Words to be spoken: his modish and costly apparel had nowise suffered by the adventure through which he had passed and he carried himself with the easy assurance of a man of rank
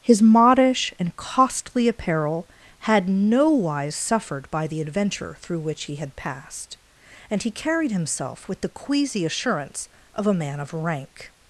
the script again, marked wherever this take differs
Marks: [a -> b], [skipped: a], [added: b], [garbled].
his modish and costly apparel had nowise suffered by the adventure through which he had passed and he carried himself with the [easy -> queasy] assurance of a man of rank